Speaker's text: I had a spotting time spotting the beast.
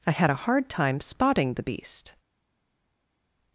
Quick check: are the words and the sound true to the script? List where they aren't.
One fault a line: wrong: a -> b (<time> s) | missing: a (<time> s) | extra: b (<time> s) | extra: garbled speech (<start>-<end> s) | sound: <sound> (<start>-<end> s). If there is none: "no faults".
wrong: spotting -> hard (0.3 s)